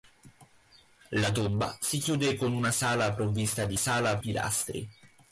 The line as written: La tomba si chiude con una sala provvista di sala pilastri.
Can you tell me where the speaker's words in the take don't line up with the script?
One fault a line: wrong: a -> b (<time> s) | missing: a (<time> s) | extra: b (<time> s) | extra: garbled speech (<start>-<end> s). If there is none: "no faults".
no faults